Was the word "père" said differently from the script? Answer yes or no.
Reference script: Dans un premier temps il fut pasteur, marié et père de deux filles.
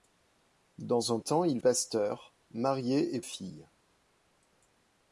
yes